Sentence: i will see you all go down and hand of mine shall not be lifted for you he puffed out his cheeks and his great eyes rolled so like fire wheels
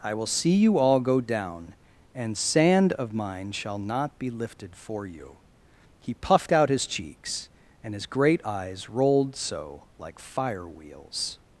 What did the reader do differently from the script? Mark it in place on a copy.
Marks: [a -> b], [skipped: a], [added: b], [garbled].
i will see you all go down and [hand -> sand] of mine shall not be lifted for you he puffed out his cheeks and his great eyes rolled so like fire wheels